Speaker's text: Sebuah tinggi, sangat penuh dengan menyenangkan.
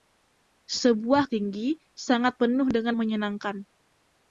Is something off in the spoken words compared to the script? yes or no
no